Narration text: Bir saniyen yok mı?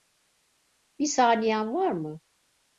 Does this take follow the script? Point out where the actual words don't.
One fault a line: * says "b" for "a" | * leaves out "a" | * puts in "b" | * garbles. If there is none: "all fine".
* says "var" for "yok"